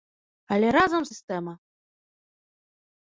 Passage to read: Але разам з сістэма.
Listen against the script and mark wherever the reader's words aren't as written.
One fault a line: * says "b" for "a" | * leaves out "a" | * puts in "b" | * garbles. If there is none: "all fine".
all fine